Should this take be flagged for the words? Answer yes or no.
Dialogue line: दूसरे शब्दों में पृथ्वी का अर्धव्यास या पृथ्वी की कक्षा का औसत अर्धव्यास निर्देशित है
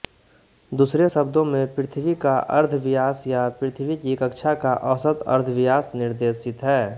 no